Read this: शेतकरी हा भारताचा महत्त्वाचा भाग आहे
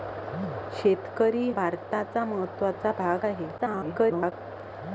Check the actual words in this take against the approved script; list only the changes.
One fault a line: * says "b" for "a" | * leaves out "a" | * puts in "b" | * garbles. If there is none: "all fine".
* leaves out "हा"
* garbles